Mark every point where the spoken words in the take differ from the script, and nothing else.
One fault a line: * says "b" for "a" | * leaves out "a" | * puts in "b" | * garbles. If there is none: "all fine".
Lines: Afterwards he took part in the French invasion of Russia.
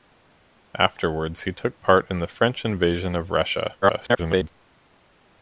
* garbles